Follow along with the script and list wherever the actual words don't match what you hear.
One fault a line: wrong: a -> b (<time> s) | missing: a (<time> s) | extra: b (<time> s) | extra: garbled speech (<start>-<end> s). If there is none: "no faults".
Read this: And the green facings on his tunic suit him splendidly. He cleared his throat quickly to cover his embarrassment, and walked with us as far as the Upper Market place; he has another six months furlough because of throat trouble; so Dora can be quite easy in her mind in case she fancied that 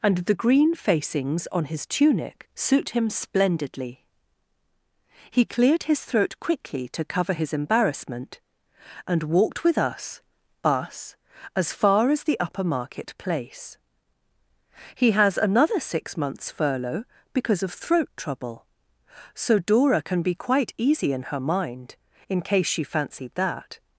extra: us (10.6 s)